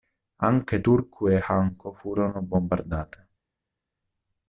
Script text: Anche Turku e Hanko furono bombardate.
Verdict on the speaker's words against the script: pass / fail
pass